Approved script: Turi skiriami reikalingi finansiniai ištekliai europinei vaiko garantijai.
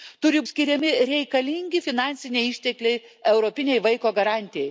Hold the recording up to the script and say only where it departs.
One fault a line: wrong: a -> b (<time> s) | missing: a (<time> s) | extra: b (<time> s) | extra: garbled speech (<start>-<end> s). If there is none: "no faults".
no faults